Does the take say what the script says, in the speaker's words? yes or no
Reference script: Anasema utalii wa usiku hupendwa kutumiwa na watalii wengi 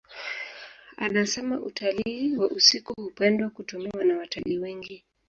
yes